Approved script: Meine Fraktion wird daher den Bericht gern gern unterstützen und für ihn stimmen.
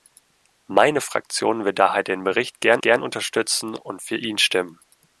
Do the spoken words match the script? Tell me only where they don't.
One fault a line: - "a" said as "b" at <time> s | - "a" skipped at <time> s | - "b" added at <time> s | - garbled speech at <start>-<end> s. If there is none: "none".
none